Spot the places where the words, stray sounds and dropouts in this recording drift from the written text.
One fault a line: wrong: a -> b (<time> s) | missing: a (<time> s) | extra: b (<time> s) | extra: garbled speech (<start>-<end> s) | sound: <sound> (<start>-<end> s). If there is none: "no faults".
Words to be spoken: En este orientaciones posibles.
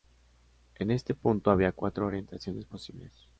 extra: punto había cuatro (1.1 s)